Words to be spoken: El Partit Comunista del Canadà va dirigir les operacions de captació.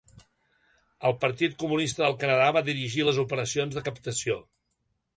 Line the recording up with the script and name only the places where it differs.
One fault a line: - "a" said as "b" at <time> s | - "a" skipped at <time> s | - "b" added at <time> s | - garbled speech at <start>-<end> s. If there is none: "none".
none